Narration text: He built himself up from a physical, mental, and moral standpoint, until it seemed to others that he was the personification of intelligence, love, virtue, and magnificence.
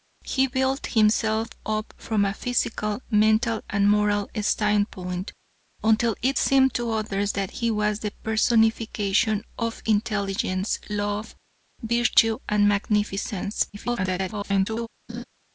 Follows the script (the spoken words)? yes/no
no